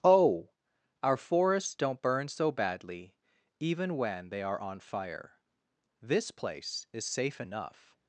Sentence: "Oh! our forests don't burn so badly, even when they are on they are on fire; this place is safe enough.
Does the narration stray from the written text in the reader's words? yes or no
yes